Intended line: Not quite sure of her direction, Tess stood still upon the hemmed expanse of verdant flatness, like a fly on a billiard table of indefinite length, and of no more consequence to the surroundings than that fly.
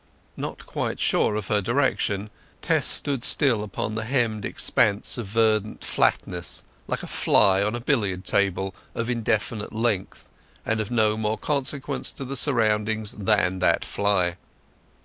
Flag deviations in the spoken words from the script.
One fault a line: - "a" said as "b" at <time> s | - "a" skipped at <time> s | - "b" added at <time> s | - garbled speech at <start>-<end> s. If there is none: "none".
none